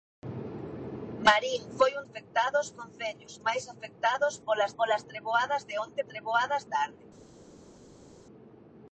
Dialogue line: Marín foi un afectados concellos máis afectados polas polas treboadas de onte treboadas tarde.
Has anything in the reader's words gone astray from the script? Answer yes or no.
no